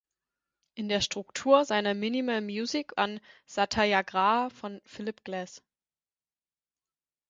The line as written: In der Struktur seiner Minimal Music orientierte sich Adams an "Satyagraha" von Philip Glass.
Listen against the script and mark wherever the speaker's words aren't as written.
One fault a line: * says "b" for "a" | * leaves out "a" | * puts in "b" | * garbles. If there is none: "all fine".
* leaves out "orientierte sich Adams"